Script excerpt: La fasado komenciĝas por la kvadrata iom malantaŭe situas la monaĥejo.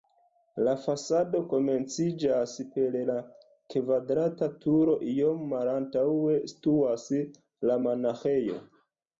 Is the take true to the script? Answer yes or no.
no